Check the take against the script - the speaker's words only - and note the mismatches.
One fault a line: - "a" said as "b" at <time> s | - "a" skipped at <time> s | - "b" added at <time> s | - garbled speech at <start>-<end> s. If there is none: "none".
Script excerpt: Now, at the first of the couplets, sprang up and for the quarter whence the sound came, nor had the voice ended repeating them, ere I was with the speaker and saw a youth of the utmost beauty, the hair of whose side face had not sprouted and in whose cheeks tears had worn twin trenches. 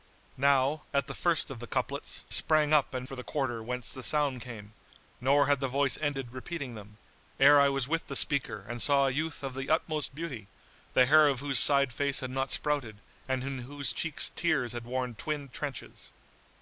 none